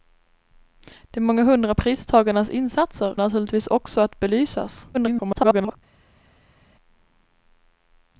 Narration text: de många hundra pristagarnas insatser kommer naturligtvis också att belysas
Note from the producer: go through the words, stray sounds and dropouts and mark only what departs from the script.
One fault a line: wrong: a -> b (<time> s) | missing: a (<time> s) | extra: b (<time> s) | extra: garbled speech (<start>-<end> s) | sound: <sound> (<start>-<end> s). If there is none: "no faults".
missing: kommer (3.2 s)
extra: garbled speech (4.9-5.8 s)